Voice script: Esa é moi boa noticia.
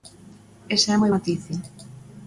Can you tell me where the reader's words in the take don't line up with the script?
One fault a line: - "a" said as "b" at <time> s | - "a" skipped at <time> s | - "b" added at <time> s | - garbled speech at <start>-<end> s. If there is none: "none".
- "boa" skipped at 1.1 s